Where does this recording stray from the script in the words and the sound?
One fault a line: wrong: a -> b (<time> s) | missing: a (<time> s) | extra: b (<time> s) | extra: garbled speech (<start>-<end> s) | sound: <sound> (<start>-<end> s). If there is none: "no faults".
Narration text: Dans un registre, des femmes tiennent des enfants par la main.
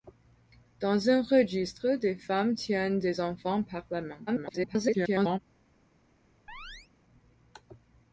extra: garbled speech (4.3-5.4 s)
sound: chirp (6.5-6.9 s)